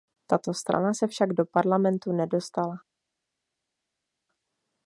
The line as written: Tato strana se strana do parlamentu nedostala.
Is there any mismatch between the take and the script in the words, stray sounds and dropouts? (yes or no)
yes